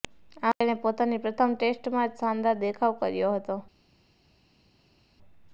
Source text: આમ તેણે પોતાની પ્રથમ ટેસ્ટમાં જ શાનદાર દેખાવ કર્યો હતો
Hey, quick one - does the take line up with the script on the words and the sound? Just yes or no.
yes